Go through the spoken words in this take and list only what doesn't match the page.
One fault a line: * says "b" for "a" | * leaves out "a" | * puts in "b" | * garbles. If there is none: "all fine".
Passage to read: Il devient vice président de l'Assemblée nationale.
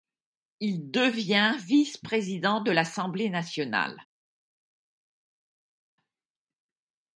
all fine